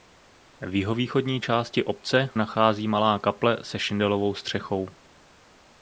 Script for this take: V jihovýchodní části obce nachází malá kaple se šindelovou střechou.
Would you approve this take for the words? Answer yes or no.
yes